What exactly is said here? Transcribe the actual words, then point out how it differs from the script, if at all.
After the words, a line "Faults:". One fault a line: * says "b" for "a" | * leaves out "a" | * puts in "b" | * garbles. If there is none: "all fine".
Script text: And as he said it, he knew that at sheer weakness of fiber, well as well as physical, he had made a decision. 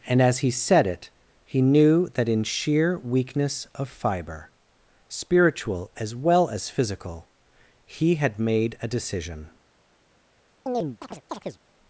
And as he said it, he knew that in sheer weakness of fiber, spiritual as well as physical, he had made a decision.
Faults:
* says "in" for "at"
* says "spiritual" for "well"